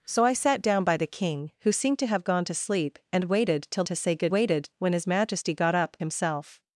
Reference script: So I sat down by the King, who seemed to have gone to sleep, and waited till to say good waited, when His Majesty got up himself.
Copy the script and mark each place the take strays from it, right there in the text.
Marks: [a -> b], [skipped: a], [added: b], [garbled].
So I sat down by the King, who seemed to have gone to sleep, and waited till to say good waited, when His Majesty got up himself.